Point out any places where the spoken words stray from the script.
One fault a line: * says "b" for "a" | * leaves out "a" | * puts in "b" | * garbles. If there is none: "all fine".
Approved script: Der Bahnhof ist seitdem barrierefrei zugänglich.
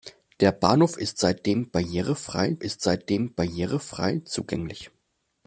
* puts in "ist seitdem barrierefrei"